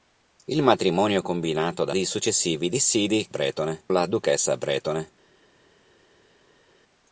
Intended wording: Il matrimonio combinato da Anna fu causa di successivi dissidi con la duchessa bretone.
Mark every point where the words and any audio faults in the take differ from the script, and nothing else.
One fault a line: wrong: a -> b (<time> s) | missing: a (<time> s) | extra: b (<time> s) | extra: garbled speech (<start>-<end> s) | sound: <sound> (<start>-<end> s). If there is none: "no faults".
missing: Anna fu causa (2.0 s)
wrong: con -> bretone (3.3 s)